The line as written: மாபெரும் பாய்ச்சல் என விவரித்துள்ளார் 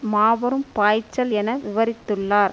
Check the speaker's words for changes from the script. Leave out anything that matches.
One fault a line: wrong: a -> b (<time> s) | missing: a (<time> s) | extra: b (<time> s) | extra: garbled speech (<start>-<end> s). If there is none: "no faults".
no faults